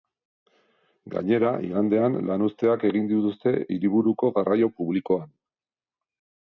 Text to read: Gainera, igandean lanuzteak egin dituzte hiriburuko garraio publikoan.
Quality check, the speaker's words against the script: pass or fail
pass